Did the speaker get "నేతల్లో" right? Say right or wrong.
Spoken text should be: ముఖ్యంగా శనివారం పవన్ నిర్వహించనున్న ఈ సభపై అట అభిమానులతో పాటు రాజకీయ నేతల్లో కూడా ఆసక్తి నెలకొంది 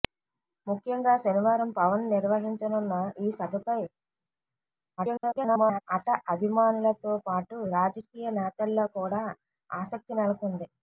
right